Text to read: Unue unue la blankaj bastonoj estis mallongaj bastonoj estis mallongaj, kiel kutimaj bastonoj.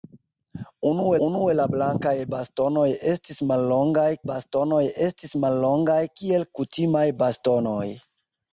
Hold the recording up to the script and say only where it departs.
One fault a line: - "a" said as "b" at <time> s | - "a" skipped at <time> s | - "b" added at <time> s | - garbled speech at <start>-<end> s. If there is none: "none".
none